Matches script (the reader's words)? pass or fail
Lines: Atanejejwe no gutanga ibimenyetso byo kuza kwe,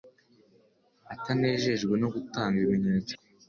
fail